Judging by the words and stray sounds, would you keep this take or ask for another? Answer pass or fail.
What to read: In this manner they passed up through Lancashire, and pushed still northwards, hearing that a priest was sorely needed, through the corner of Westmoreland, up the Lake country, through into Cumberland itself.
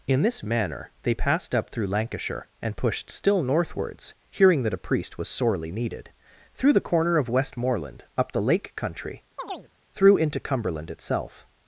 fail